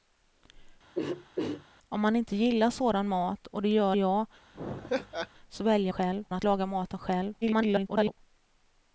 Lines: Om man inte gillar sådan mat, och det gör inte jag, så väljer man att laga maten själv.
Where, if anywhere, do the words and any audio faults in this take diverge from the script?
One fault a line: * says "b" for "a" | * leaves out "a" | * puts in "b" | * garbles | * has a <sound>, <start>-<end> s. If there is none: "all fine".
* has a throat clearing, 0.9-1.7 s
* leaves out "inte"
* has a laugh, 4.5-5.3 s
* says "själv" for "man"
* garbles